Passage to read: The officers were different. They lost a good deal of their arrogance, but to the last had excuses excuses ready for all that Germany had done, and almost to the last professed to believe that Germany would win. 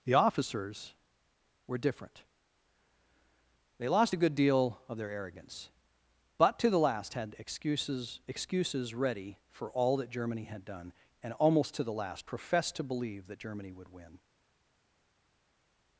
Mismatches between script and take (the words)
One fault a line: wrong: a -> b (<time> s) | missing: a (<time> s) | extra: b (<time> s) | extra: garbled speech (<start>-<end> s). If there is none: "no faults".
no faults